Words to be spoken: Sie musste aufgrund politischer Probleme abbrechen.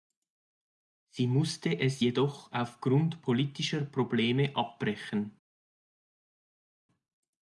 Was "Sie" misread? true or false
false